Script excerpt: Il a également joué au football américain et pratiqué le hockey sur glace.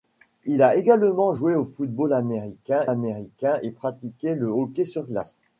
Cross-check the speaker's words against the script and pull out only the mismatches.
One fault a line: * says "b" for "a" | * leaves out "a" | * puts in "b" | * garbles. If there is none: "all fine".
* puts in "américain"